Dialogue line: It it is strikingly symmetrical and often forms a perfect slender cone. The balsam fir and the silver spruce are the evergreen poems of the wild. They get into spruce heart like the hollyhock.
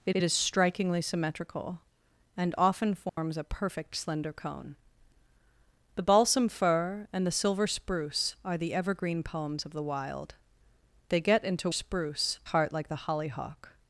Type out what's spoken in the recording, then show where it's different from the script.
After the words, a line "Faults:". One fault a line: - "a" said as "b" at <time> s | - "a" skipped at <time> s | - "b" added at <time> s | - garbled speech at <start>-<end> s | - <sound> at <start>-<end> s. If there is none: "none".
It it is strikingly symmetrical and often forms a perfect slender cone. The balsam fir and the silver spruce are the evergreen poems of the wild. They get into spruce heart like the hollyhock.
Faults:
- dropout at 3.1-3.2 s